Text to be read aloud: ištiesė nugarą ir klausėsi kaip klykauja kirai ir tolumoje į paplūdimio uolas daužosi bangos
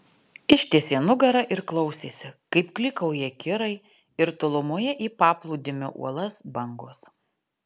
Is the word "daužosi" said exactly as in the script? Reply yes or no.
no